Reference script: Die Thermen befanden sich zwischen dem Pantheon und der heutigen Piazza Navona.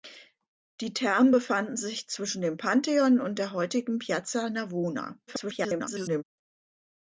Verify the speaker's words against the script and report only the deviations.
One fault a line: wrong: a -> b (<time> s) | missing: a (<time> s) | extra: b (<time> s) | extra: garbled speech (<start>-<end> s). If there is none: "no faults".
extra: garbled speech (5.3-6.2 s)